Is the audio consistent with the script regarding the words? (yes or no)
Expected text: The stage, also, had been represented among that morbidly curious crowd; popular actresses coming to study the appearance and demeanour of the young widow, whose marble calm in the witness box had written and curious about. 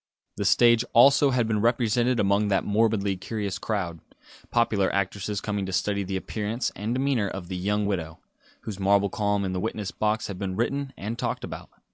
no